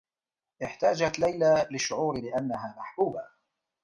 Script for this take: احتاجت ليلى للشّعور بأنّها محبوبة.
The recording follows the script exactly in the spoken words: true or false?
true